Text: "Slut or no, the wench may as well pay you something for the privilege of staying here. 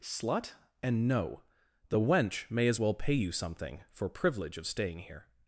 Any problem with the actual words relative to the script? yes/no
yes